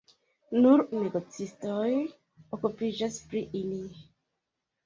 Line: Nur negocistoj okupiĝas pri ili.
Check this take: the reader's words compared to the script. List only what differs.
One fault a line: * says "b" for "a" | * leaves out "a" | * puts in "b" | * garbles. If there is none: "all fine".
all fine